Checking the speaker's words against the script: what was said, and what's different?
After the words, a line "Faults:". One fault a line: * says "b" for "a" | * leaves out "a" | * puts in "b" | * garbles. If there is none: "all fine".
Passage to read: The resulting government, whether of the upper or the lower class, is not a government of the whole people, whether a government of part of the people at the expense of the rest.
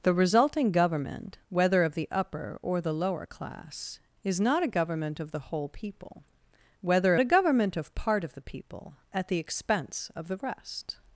The resulting government, whether of the upper or the lower class, is not a government of the whole people, whether a government of part of the people at the expense of the rest.
Faults:
all fine